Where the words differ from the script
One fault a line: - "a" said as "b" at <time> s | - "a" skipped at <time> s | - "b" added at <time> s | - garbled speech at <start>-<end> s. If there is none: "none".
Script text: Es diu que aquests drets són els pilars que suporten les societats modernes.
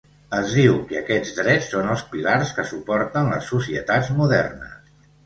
none